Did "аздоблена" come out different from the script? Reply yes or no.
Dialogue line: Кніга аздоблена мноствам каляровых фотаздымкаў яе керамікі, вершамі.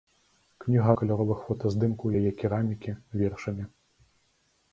yes